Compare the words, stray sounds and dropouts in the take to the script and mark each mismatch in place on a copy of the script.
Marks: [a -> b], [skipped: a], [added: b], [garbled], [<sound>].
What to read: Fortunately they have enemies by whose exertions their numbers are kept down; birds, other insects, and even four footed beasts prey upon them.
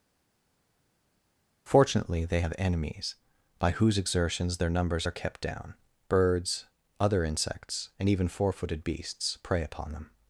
Fortunately they have enemies by whose exertions their numbers are kept down; birds, other insects, and even four footed beasts prey upon them.